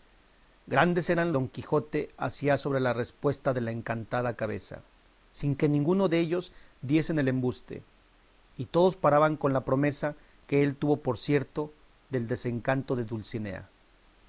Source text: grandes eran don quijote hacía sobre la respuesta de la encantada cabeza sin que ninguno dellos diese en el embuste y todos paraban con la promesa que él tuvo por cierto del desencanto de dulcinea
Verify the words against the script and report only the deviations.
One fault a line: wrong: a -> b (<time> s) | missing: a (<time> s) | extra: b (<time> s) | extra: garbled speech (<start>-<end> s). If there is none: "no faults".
no faults